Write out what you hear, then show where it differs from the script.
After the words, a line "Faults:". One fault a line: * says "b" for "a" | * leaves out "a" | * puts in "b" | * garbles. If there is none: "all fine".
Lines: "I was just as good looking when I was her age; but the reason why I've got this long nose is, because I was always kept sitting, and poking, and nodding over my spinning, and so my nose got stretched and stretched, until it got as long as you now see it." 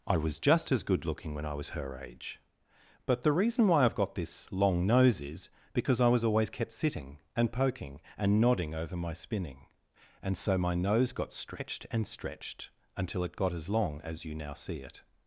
"I was just as good looking when I was her age; but the reason why I've got this long nose is, because I was always kept sitting, and poking, and nodding over my spinning, and so my nose got stretched and stretched, until it got as long as you now see it."
Faults:
all fine